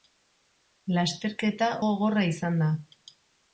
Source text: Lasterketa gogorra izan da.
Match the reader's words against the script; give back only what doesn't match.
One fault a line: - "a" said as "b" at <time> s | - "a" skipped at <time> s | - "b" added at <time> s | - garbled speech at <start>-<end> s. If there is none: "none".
none